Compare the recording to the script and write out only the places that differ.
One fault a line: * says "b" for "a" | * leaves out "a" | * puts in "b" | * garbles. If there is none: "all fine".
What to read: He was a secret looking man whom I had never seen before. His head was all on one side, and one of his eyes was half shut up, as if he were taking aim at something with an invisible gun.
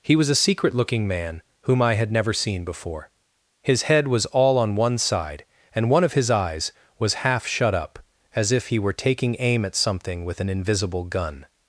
all fine